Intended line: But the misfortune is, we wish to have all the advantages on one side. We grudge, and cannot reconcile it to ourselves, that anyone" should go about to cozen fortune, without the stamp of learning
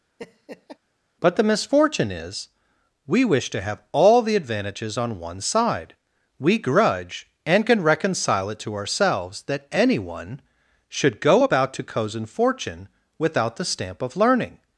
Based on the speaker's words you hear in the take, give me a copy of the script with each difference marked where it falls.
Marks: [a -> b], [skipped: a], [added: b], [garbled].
But the misfortune is, we wish to have all the advantages on one side. We grudge, and [cannot -> can] reconcile it to ourselves, that anyone" should go about to cozen fortune, without the stamp of learning